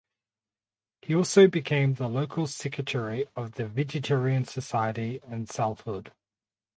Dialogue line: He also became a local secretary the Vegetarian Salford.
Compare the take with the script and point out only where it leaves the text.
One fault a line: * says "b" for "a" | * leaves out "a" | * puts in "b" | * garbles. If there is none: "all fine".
* says "the" for "a"
* puts in "of"
* puts in "Society in"